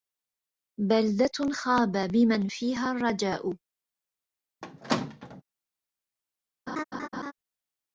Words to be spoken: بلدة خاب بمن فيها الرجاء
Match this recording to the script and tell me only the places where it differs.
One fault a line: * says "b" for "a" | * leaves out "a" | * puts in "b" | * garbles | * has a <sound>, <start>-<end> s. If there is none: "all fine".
* has a squeak, 4.6-5.4 s
* has a laugh, 6.7-7.3 s